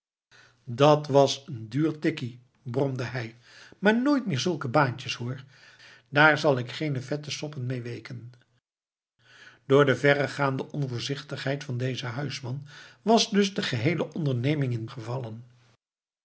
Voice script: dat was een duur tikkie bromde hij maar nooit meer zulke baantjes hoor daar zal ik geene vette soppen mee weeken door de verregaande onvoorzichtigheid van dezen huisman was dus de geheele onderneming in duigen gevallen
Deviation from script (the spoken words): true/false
true